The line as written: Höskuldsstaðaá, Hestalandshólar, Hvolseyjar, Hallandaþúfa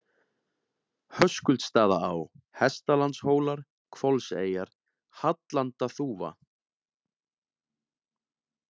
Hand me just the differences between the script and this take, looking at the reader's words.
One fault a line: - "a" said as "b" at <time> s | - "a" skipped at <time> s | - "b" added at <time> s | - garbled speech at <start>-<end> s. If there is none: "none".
none